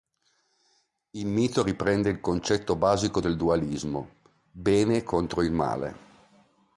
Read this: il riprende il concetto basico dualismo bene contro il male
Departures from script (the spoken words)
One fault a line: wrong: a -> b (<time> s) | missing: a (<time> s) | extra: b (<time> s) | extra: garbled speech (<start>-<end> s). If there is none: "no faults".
extra: mito (1.3 s)
extra: del (3.2 s)